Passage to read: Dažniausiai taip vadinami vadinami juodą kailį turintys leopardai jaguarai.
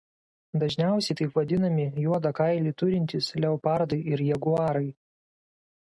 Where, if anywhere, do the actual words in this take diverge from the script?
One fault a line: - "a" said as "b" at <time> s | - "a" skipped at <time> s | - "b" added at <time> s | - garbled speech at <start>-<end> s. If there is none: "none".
- "vadinami" skipped at 1.9 s
- "ir" added at 4.2 s